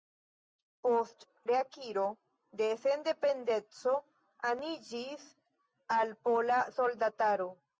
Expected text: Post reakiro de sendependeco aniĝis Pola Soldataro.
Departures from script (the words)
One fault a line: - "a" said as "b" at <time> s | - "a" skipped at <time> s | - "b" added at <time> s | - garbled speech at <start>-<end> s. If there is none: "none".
- "al" added at 6.0 s